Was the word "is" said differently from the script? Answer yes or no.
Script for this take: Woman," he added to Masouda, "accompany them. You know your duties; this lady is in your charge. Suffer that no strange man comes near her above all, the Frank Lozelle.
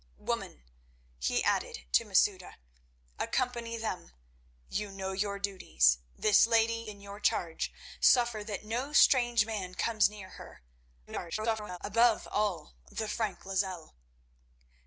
yes